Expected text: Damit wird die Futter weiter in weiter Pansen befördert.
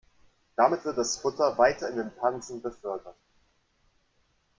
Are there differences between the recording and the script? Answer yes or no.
yes